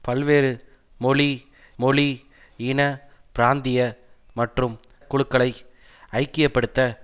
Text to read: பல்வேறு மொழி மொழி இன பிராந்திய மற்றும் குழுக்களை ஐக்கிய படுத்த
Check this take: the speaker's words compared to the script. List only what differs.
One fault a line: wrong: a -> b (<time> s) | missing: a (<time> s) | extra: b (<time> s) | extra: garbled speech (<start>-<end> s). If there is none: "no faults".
no faults